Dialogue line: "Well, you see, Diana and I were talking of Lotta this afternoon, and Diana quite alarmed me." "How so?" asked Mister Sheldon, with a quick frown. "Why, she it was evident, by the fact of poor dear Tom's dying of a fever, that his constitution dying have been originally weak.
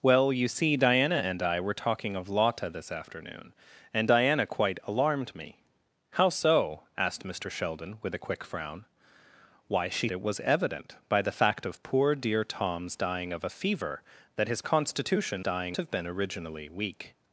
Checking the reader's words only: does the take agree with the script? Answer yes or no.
yes